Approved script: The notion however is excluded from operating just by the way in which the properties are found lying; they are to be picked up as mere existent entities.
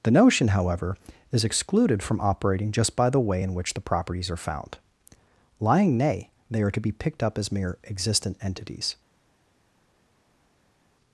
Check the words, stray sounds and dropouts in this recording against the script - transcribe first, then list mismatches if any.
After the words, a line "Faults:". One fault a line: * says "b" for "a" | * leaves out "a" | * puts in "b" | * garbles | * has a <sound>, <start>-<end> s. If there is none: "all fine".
The notion however is excluded from operating just by the way in which the properties are found lying; nay they are to be picked up as mere existent entities.
Faults:
* puts in "nay"